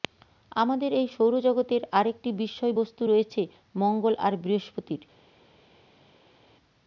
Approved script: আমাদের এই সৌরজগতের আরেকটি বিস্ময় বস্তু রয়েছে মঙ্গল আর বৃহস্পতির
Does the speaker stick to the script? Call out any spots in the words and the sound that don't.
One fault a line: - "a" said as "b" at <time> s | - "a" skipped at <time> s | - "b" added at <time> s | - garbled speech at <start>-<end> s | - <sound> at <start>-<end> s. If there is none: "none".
none